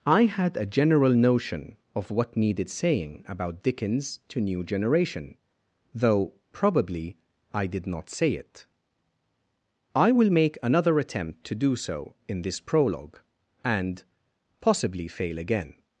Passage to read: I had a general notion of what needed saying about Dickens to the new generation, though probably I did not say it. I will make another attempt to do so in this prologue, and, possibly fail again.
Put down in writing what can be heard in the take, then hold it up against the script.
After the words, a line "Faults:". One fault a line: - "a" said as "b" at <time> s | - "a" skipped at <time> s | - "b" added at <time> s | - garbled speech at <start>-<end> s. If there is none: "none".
I had a general notion of what needed saying about Dickens to new generation, though probably I did not say it. I will make another attempt to do so in this prologue, and, possibly fail again.
Faults:
- "the" skipped at 4.4 s